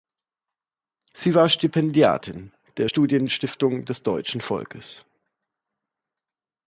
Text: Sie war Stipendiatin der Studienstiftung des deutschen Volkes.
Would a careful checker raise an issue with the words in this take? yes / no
no